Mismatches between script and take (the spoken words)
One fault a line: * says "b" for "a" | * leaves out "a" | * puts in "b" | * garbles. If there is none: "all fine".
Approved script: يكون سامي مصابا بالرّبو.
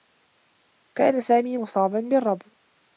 * says "كان" for "يكون"